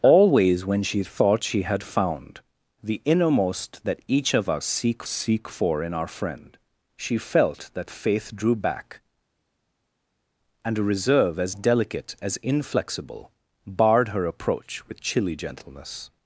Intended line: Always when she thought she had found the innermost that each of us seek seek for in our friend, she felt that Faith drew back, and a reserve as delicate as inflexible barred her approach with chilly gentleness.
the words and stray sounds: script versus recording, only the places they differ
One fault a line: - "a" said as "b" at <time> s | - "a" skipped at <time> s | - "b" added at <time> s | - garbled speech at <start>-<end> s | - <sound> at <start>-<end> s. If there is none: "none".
none